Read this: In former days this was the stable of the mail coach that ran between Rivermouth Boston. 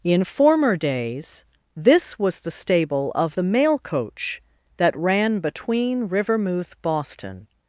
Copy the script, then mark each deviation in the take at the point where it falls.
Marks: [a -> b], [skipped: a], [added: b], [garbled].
In former days this was the stable of the mail coach that ran between Rivermouth Boston.